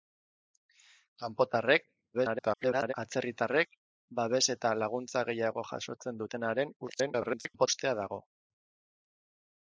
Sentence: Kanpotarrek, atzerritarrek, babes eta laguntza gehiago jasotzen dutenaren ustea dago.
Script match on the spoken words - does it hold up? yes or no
no